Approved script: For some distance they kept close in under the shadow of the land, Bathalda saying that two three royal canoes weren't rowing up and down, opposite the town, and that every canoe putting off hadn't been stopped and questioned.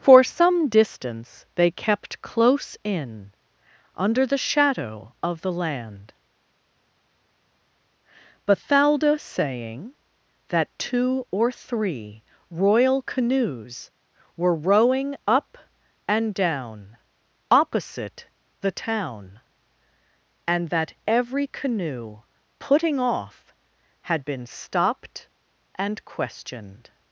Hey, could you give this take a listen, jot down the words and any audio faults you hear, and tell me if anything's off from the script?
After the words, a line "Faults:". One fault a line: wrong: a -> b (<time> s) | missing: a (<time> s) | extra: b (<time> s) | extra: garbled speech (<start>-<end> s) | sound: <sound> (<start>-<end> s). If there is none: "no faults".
For some distance they kept close in under the shadow of the land, Bathalda saying that two or three royal canoes were rowing up and down, opposite the town, and that every canoe putting off had been stopped and questioned.
Faults:
extra: or (11.3 s)
wrong: weren't -> were (14.4 s)
wrong: hadn't -> had (24.1 s)